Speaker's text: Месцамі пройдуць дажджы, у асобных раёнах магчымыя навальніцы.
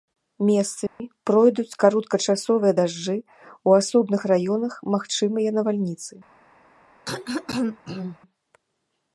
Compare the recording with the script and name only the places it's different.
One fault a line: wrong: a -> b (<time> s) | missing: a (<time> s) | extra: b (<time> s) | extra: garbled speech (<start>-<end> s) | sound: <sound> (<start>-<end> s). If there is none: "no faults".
sound: dropout (0.9-1.0 s)
extra: кароткачасовыя (1.8 s)
sound: throat clearing (7.1-8.2 s)